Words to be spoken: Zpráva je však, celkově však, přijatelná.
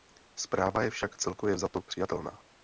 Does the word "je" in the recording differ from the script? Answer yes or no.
no